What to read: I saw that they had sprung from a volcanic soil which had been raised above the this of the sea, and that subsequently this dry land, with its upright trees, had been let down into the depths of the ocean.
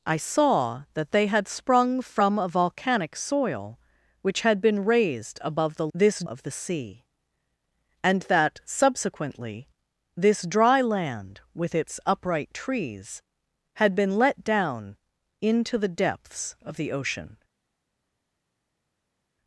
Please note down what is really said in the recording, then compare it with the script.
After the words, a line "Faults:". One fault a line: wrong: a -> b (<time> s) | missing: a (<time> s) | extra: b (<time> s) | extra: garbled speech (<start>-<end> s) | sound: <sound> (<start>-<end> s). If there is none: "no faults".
I saw that they had sprung from a volcanic soil which had been raised above the this of the sea, and that subsequently this dry land, with its upright trees, had been let down into the depths of the ocean.
Faults:
no faults